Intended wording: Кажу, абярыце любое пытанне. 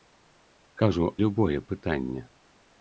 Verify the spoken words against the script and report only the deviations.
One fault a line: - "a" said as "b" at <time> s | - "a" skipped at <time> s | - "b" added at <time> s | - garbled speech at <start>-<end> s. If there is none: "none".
- "абярыце" skipped at 1.1 s